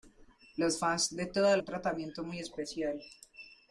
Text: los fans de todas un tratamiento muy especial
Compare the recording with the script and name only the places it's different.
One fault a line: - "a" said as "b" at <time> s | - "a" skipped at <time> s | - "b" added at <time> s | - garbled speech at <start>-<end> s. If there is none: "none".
none